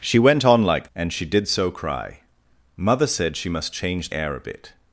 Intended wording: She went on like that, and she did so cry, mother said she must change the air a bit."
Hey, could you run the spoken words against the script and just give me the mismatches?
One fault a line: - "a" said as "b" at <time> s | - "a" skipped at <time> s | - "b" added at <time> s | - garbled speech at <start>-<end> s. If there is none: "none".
- "that" skipped at 0.9 s
- "the" skipped at 4.1 s